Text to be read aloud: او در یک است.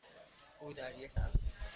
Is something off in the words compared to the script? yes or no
no